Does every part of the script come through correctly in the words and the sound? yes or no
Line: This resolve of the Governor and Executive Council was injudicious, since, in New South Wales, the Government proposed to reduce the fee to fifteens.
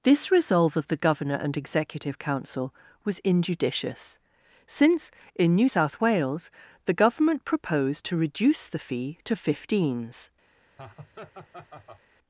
no